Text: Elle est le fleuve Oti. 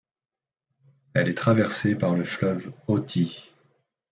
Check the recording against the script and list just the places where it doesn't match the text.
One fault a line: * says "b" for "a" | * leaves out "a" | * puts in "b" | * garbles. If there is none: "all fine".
* puts in "traversée par"